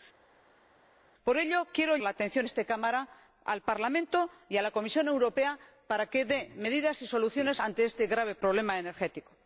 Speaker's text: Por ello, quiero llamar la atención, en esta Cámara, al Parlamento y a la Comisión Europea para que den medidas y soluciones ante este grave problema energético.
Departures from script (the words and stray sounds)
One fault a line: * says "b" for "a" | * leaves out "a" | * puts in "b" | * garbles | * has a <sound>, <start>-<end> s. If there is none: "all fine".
* leaves out "llamar"
* leaves out "en"